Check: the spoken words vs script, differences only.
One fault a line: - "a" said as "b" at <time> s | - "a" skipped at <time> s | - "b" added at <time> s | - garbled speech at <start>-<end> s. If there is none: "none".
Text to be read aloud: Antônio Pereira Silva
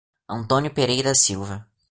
none